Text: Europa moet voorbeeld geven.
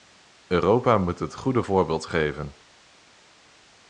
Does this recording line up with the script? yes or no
no